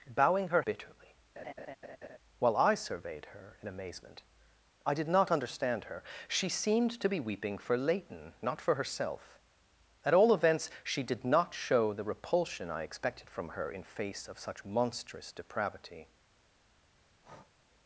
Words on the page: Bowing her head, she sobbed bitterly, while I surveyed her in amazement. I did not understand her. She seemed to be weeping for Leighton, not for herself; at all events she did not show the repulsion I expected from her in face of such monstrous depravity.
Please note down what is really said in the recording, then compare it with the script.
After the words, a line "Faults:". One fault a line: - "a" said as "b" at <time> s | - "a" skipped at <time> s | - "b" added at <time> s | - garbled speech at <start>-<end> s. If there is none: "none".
Bowing her bitterly, while I surveyed her in amazement. I did not understand her. She seemed to be weeping for Leighton, not for herself; at all events she did not show the repulsion I expected from her in face of such monstrous depravity.
Faults:
- "head she sobbed" skipped at 0.6 s